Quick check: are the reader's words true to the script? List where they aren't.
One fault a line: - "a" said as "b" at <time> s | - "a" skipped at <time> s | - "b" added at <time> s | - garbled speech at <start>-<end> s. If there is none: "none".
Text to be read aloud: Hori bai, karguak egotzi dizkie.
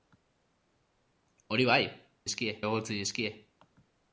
- "karguak" said as "dizkie" at 2.2 s